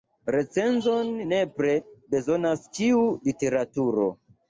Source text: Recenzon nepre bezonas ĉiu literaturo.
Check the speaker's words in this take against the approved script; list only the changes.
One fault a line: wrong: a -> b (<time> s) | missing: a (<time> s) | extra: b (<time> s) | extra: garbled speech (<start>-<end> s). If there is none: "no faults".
no faults